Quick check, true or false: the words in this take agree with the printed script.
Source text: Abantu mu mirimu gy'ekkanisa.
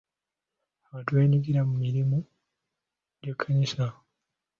false